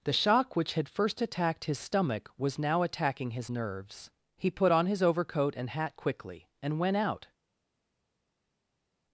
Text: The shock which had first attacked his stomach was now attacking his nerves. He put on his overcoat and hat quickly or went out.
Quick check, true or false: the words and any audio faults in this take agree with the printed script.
false